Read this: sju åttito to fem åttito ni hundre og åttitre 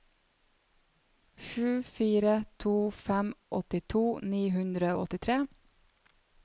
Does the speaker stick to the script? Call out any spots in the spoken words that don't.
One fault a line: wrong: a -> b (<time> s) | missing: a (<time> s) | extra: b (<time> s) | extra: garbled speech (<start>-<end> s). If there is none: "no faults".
wrong: åttito -> fire (1.8 s)